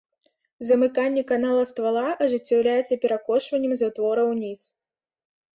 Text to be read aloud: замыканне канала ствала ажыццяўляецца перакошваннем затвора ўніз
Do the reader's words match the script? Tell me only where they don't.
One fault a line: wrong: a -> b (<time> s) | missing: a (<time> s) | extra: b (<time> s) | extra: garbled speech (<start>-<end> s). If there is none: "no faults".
no faults